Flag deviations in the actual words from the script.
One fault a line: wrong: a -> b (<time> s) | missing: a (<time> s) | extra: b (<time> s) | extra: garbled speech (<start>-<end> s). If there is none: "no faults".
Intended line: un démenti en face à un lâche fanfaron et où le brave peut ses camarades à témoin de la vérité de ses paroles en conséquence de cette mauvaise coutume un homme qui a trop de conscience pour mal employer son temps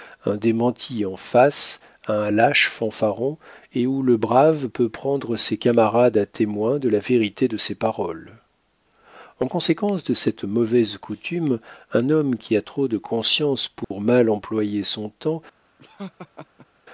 extra: prendre (4.9 s)